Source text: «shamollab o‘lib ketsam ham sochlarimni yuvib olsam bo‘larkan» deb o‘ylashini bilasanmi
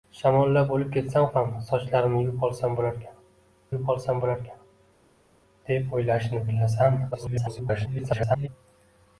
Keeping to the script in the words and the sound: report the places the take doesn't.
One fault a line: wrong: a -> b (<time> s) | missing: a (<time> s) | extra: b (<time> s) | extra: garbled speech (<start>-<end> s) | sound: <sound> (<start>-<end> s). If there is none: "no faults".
extra: yuvib olsam bo‘larkan (3.7 s)
extra: garbled speech (7.1-8.5 s)